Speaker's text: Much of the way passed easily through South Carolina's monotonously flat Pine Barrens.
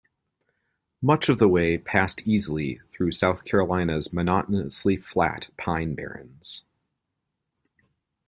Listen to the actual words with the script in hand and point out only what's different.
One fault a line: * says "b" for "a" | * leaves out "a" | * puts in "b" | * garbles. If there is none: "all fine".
all fine